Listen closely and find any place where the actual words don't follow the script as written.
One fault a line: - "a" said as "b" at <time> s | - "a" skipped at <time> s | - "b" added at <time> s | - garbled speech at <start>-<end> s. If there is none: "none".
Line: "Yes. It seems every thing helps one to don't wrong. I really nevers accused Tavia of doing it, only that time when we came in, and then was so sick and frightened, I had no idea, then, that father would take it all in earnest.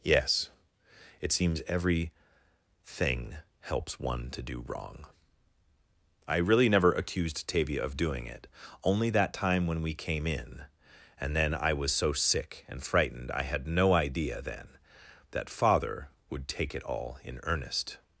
- "don't" said as "do" at 4.4 s
- "nevers" said as "never" at 6.7 s
- "I" added at 11.5 s